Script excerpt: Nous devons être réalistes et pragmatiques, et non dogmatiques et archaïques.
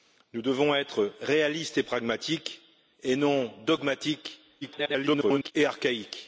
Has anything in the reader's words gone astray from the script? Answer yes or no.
yes